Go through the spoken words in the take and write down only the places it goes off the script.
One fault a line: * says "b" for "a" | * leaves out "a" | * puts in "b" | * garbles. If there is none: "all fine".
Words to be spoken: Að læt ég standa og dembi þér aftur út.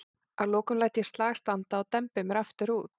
* puts in "lokum"
* puts in "slag"
* says "mér" for "þér"